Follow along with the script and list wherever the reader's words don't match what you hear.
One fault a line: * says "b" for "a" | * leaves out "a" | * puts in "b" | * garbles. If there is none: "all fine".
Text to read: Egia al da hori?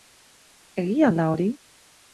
all fine